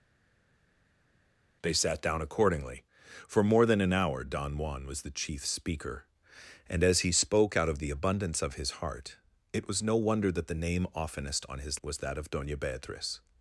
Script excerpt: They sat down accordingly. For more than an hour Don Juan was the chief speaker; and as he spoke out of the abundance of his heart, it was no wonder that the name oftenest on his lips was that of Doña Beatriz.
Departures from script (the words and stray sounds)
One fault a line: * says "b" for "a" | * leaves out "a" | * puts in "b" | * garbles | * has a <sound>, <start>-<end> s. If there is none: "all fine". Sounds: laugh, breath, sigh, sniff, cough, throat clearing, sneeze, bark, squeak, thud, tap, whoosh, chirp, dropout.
* leaves out "lips"